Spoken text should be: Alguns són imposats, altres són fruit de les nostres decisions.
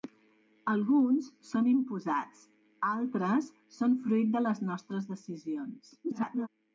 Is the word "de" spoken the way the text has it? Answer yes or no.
yes